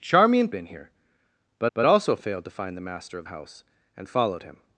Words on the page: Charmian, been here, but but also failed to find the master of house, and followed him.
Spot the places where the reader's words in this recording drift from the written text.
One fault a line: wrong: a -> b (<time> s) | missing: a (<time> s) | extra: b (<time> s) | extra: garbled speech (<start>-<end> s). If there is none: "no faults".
no faults